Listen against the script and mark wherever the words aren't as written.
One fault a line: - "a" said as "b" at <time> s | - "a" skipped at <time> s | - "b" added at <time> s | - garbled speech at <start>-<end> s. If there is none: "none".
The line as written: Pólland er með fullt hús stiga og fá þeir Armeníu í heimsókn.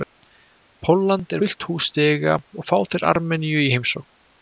- "með" skipped at 1.4 s